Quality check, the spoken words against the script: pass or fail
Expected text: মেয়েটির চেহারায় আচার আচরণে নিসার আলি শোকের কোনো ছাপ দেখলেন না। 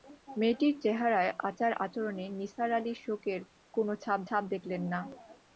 fail